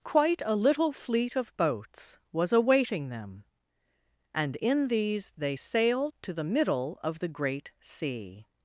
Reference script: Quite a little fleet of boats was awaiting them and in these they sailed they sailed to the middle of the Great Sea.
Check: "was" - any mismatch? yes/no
no